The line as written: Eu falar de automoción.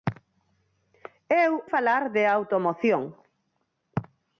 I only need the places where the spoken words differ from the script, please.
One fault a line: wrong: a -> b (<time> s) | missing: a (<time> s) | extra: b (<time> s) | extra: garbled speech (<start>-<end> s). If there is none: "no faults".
no faults